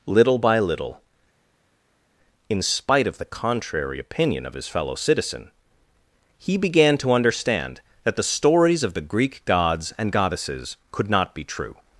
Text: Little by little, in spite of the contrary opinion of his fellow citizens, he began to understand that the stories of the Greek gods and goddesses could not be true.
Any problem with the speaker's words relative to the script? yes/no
yes